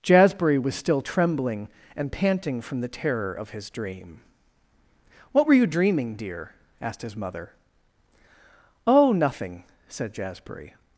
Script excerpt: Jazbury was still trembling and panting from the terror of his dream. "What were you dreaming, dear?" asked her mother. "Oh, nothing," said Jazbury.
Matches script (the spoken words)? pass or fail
fail